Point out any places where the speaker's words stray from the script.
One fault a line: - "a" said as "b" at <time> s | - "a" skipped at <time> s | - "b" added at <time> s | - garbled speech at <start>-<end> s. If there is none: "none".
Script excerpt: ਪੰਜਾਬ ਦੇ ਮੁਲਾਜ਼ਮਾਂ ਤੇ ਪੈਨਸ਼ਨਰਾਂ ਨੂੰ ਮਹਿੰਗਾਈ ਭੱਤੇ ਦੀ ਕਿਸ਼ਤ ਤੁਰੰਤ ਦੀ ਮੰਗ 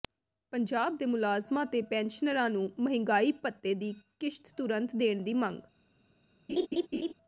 - "ਦੇਣ" added at 4.9 s